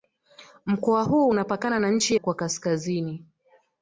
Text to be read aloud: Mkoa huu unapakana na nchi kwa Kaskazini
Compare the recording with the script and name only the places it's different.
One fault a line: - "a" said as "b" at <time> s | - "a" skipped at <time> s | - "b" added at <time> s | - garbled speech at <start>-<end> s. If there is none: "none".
none